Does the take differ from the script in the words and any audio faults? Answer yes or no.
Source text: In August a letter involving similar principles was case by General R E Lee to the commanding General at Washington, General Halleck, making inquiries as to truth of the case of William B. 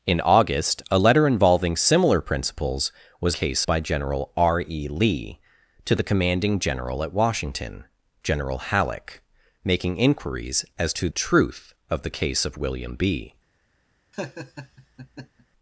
yes